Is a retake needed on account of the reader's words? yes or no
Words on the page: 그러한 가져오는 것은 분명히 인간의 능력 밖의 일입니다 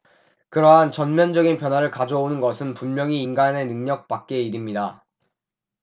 yes